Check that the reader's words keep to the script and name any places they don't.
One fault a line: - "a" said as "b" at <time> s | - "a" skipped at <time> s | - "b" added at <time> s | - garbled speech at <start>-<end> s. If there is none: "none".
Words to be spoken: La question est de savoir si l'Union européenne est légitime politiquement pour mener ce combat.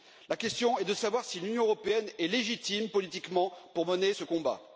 none